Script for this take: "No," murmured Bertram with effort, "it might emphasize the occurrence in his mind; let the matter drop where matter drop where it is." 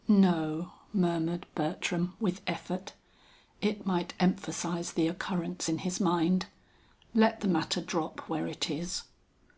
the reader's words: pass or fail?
fail